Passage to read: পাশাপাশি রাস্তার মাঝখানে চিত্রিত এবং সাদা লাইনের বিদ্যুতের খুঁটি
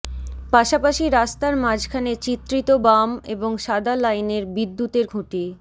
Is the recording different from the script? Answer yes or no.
yes